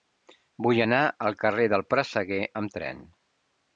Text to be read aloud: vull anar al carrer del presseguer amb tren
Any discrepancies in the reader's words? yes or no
no